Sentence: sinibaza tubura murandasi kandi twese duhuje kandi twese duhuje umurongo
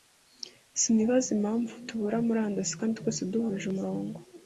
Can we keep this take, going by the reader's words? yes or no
no